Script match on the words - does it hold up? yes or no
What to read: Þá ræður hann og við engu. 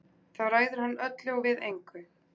no